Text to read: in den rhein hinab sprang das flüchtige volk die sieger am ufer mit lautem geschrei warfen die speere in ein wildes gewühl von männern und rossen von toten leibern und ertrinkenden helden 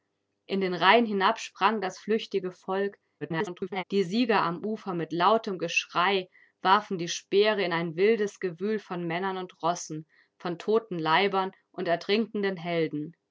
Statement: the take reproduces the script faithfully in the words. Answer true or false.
false